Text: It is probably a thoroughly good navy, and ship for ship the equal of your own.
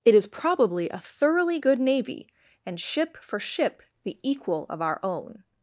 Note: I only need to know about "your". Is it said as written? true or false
false